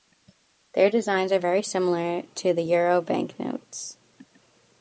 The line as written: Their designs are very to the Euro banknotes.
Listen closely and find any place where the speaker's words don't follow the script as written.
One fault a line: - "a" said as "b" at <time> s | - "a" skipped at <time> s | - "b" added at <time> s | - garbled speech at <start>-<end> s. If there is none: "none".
- "similar" added at 1.6 s